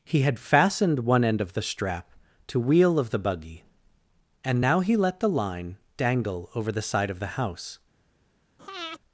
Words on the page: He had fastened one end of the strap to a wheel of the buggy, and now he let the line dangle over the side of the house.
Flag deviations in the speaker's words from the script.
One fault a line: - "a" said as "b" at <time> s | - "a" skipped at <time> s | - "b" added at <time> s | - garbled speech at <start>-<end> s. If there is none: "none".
- "a" skipped at 2.6 s